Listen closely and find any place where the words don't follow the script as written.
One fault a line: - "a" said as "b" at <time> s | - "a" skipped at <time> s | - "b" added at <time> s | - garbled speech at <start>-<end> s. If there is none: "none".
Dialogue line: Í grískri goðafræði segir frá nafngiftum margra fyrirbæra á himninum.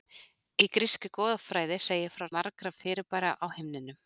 - "nafngiftum" skipped at 2.3 s